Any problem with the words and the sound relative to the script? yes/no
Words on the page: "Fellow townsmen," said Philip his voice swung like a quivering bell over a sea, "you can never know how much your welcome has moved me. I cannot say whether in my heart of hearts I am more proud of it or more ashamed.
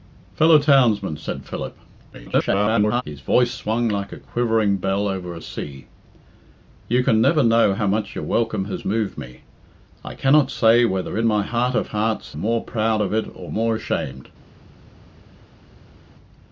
yes